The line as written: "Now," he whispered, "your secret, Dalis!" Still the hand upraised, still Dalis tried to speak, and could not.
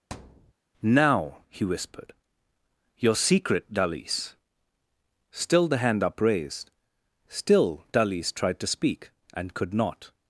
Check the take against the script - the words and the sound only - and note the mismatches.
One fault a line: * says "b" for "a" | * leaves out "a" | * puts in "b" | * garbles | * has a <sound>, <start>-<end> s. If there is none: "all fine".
* has a thud, 0.1-0.5 s